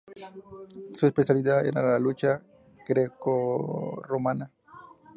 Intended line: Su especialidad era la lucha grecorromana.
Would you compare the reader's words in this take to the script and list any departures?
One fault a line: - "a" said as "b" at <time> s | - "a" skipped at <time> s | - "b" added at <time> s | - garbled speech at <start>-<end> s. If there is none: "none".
none